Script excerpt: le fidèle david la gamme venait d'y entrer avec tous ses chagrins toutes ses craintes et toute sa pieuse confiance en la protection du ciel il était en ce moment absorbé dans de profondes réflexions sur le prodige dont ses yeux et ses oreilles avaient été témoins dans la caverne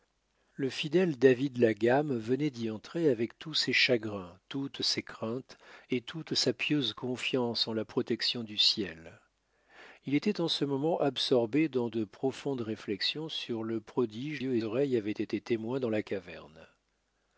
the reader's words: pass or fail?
fail